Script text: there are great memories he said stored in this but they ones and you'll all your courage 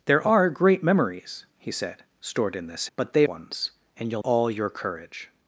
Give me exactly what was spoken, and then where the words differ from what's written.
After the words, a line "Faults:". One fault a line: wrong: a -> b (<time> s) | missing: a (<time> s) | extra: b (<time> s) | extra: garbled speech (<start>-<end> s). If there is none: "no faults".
there are great memories he said stored in this but they ones and you'll all your courage
Faults:
no faults